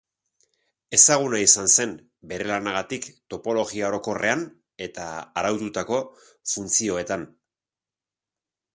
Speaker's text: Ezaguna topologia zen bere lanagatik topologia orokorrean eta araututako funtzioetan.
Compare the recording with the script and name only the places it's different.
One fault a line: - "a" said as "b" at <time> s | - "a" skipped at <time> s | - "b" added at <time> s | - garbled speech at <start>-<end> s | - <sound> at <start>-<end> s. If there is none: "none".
- "topologia" said as "izan" at 1.5 s